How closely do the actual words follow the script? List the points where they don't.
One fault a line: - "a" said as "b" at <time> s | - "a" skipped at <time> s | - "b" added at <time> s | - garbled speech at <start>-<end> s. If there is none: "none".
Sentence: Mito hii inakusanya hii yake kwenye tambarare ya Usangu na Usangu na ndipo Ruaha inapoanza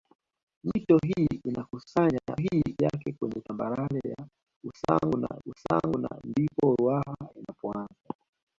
none